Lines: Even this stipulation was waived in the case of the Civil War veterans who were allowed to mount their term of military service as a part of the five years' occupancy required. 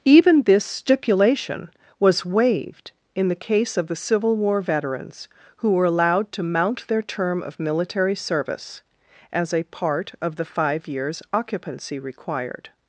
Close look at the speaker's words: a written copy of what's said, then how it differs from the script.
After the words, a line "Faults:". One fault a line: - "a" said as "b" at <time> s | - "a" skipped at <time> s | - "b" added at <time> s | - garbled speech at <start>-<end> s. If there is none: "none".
Even this stipulation was waived in the case of the Civil War veterans who were allowed to mount their term of military service as a part of the five years' occupancy required.
Faults:
none